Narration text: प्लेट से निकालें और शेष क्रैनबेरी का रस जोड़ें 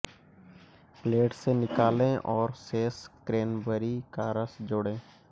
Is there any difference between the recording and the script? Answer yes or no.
no